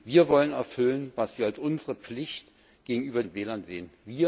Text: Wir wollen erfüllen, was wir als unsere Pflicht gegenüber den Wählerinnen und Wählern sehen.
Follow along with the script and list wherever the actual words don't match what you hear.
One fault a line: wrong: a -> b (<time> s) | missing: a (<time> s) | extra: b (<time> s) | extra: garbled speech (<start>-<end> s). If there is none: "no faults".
missing: den Wählerinnen (3.2 s)